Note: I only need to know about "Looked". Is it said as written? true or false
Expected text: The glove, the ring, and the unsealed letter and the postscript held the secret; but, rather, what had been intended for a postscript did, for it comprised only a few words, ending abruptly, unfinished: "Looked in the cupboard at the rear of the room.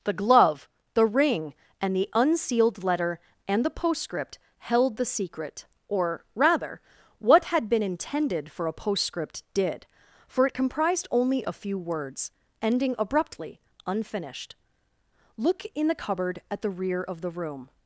false